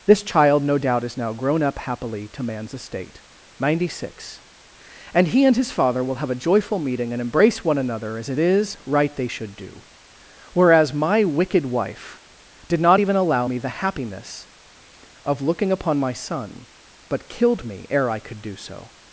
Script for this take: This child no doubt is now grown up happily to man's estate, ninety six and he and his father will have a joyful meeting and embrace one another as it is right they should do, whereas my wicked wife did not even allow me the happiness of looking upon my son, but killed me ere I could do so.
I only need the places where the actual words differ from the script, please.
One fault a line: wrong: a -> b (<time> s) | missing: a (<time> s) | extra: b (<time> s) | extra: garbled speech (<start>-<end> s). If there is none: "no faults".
no faults